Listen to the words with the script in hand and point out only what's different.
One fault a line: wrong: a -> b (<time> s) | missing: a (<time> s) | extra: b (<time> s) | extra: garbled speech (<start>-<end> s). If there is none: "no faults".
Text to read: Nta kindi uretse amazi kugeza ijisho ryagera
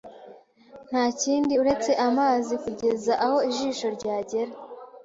extra: aho (3.3 s)